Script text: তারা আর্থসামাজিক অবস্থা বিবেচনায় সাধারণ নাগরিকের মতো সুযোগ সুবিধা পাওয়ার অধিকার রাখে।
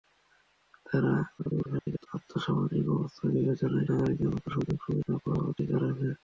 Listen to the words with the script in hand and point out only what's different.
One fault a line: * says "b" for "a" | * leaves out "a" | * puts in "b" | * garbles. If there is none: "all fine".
* garbles
* leaves out "সাধারণ"